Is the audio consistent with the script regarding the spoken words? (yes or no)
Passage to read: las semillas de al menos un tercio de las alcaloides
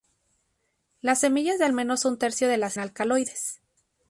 yes